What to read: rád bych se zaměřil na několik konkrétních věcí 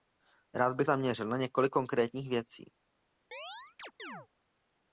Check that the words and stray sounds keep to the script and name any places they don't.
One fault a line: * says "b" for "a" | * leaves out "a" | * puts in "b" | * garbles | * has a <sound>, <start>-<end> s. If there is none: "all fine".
* leaves out "se"
* has a chirp, 3.3-4.3 s